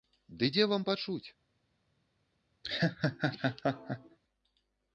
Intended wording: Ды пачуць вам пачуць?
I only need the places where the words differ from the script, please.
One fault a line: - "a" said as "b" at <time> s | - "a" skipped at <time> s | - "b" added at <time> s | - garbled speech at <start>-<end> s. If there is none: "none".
- "пачуць" said as "дзе" at 0.5 s